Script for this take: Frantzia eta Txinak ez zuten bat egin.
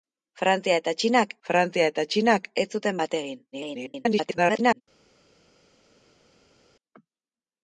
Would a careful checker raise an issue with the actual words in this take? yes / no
yes